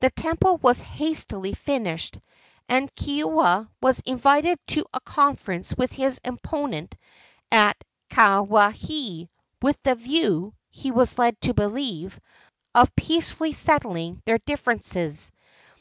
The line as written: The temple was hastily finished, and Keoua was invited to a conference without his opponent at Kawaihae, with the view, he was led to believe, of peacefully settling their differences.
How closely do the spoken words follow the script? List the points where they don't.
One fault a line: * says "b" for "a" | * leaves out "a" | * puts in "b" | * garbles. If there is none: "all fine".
* says "with" for "without"